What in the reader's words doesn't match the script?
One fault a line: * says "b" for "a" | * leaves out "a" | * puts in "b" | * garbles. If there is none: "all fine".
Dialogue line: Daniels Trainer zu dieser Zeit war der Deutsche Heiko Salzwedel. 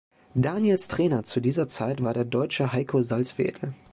all fine